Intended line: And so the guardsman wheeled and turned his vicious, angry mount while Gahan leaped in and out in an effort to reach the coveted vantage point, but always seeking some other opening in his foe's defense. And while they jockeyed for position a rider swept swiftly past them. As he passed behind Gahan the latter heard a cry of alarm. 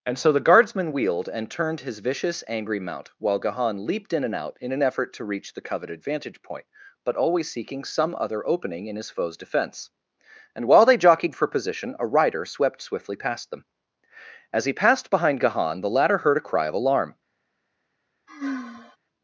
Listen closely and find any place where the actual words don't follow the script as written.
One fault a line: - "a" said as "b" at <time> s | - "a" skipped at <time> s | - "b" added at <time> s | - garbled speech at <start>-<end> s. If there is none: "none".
none